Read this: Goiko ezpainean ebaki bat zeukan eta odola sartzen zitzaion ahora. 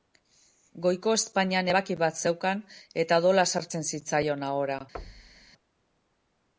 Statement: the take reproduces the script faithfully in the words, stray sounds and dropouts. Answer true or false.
false